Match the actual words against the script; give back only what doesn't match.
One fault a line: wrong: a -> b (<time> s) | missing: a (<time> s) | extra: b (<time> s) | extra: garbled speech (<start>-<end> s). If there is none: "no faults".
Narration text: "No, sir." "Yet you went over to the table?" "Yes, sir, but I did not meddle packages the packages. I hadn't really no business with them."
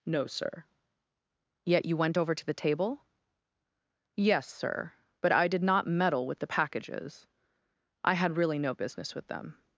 wrong: packages -> with (6.3 s)
wrong: hadn't -> had (8.1 s)